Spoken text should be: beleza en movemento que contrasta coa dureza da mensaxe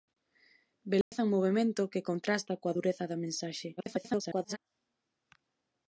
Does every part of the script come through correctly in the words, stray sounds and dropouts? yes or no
no